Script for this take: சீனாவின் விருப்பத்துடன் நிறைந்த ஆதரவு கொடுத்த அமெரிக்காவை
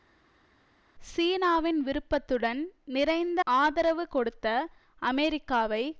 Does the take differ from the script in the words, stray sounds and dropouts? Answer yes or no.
no